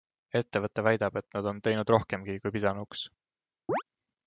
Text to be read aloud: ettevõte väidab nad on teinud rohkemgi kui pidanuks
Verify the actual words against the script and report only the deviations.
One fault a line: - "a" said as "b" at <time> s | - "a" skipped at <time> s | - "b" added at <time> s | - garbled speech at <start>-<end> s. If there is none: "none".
- "et" added at 1.2 s